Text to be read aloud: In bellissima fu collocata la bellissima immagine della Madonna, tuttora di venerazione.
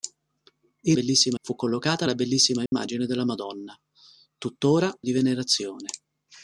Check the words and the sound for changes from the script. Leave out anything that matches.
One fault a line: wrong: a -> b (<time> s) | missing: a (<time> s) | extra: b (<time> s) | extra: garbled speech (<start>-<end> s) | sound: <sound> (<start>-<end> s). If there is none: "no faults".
sound: dropout (2.7-2.7 s)